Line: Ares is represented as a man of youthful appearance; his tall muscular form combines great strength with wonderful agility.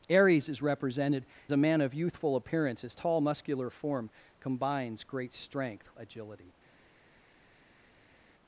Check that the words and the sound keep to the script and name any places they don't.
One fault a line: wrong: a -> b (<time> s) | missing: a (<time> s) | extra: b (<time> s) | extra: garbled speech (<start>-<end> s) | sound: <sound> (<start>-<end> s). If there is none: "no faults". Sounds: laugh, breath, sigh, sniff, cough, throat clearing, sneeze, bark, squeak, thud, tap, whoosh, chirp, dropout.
missing: as (1.2 s)
missing: with wonderful (5.9 s)